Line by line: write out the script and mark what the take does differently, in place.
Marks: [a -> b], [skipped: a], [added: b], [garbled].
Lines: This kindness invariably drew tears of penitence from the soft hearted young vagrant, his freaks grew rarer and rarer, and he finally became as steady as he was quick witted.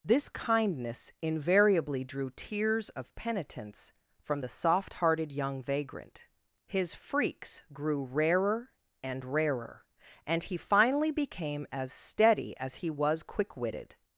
This kindness invariably drew tears of penitence from the soft hearted young vagrant, his freaks grew rarer and rarer, and he finally became as steady as he was quick witted.